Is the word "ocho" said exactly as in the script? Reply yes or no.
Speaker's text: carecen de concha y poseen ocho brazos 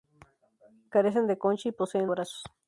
no